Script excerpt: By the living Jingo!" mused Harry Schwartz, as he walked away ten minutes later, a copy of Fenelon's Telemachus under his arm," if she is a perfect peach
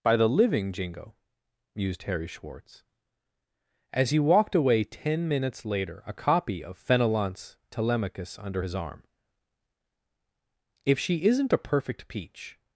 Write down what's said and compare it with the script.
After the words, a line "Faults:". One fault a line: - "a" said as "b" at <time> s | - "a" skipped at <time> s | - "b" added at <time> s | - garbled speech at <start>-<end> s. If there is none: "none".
By the living Jingo!" mused Harry Schwartz, as he walked away ten minutes later, a copy of Fenelon's Telemachus under his arm," if she isn't a perfect peach
Faults:
- "is" said as "isn't" at 11.2 s